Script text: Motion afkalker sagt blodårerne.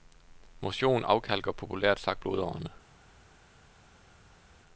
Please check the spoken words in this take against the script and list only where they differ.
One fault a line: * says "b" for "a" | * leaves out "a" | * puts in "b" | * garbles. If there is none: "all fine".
* puts in "populært"